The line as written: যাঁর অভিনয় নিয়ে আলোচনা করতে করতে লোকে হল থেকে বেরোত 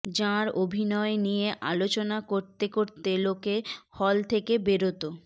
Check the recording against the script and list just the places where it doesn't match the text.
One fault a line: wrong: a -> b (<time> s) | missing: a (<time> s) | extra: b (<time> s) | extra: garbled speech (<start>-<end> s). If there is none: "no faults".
no faults